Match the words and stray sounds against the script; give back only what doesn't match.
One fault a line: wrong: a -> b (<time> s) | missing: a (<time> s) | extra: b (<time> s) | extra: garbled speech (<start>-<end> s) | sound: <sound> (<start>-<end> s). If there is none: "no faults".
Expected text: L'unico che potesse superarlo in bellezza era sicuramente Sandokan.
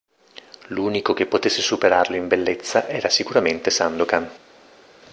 no faults